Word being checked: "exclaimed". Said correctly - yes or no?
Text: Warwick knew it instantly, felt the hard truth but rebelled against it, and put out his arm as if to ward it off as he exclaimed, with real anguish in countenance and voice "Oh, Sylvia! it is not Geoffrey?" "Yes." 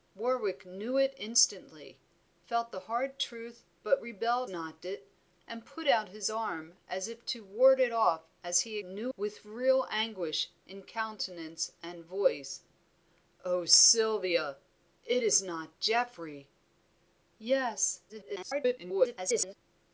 no